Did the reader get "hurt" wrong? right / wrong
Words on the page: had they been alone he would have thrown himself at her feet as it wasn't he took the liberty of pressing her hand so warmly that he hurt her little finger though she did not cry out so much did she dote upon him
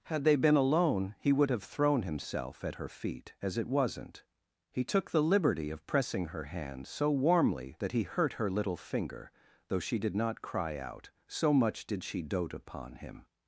right